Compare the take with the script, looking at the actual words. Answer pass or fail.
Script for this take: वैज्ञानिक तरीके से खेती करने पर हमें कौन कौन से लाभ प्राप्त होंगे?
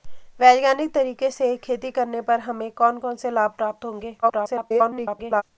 fail